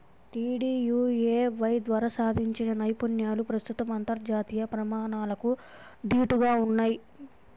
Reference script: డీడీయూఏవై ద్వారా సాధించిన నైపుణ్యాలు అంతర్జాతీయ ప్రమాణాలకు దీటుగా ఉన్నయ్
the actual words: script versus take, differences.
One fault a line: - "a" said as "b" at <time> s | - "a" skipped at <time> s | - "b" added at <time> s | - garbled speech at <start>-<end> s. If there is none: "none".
- "ప్రస్తుతం" added at 3.5 s